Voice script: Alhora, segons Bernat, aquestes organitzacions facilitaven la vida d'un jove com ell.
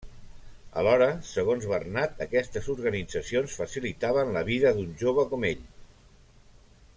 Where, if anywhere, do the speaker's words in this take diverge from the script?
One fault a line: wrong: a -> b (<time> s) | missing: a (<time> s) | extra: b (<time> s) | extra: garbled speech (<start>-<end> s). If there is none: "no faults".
no faults